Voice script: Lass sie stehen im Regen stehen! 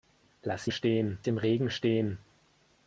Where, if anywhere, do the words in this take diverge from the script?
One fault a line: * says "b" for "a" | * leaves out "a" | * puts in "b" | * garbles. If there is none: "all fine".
all fine